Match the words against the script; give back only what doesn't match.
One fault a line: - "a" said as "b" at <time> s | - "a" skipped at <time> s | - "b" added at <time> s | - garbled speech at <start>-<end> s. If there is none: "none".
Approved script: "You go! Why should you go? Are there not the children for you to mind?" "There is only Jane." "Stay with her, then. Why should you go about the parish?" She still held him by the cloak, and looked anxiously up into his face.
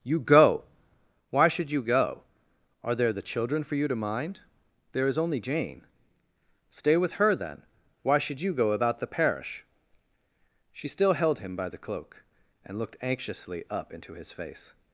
- "not" skipped at 3.1 s